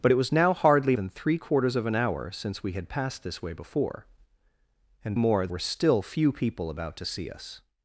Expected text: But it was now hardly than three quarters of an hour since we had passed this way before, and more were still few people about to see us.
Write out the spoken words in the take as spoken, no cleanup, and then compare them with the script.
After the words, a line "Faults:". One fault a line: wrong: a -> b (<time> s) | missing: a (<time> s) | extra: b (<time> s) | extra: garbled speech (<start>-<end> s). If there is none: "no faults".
But it was now hardly than three quarters of an hour since we had passed this way before, and more were still few people about to see us.
Faults:
no faults